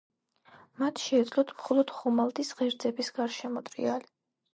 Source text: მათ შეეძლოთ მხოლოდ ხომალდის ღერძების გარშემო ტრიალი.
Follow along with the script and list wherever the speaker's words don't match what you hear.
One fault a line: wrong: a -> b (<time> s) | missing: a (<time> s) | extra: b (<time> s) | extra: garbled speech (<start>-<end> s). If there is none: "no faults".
no faults